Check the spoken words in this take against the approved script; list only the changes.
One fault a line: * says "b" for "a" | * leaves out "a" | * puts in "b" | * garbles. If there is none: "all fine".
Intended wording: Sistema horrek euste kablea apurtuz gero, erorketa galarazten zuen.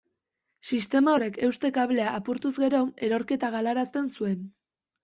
all fine